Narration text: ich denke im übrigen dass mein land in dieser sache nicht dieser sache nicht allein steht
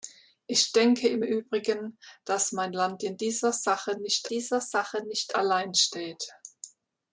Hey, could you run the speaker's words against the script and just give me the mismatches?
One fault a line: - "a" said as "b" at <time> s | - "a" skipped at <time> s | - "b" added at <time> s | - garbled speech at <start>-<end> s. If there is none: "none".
none